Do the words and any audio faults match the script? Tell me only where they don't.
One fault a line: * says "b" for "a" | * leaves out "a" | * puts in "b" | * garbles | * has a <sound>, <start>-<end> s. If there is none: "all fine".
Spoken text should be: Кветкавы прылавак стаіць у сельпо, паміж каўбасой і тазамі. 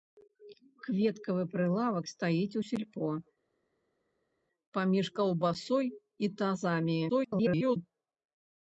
* garbles